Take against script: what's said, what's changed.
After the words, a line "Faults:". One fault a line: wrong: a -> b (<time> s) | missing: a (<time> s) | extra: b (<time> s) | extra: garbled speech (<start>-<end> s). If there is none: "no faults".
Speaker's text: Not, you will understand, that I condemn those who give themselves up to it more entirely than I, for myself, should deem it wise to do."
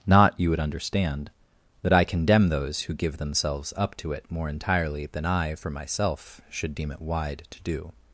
Not, you would understand, that I condemn those who give themselves up to it more entirely than I, for myself, should deem it wide to do."
Faults:
wrong: will -> would (0.5 s)
wrong: wise -> wide (7.0 s)